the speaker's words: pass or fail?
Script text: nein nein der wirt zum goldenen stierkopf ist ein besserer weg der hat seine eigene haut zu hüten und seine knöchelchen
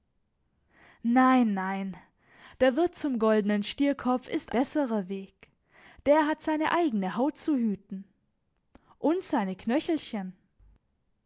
fail